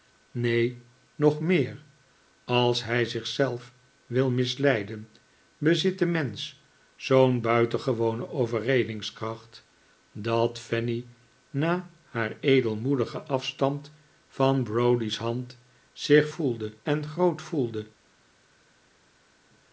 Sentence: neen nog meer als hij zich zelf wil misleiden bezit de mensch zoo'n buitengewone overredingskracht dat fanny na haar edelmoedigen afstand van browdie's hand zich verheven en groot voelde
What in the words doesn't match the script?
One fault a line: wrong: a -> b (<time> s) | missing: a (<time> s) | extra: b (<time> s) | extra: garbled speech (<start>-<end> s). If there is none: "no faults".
wrong: verheven -> voelde (16.3 s)